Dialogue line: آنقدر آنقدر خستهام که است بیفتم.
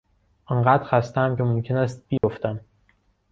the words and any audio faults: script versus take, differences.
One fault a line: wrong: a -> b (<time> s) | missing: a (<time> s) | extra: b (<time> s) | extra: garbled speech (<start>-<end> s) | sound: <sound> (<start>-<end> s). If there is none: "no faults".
missing: آنقدر (0.8 s)
extra: ممکن (1.4 s)
sound: dropout (2.2-2.2 s)